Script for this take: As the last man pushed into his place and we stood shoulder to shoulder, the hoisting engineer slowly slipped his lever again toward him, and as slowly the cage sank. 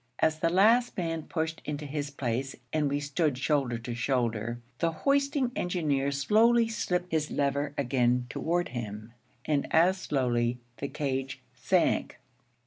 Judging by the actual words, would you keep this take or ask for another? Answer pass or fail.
pass